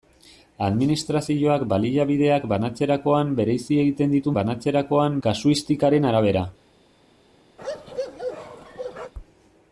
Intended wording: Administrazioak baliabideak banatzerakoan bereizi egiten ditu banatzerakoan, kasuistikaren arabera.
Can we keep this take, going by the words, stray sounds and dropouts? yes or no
no